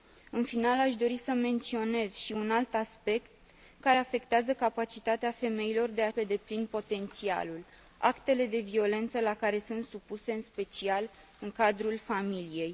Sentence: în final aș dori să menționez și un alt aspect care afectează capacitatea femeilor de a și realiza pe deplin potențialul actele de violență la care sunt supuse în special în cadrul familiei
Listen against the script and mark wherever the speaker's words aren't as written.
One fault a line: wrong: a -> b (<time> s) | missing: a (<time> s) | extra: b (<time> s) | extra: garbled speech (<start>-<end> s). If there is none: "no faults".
missing: și realiza (6.1 s)